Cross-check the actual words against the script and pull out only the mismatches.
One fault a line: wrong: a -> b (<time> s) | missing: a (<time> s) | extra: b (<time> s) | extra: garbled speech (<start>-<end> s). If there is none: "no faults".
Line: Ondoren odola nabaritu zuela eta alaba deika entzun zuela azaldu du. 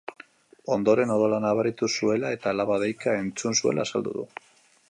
no faults